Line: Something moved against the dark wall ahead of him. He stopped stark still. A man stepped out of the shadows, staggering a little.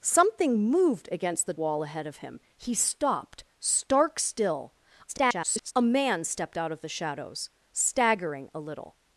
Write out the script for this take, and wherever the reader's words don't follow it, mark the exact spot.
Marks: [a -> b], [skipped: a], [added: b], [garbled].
Something moved against the [skipped: dark] wall ahead of him. He stopped stark still. [garbled] A man stepped out of the shadows, staggering a little.